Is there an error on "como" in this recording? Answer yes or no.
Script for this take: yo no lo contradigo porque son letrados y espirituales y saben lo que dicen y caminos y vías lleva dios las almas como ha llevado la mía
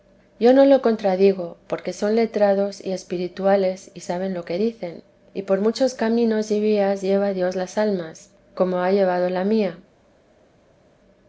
no